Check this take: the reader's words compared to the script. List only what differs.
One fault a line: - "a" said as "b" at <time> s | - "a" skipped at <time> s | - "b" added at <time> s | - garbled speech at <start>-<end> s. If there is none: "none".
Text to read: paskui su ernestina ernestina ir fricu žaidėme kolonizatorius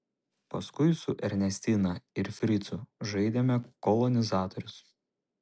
- "ernestina" skipped at 1.9 s